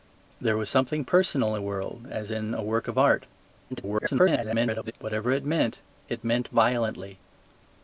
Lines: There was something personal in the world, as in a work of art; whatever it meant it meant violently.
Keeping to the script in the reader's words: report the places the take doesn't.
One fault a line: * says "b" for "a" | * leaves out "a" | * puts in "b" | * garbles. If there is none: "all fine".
* leaves out "in"
* garbles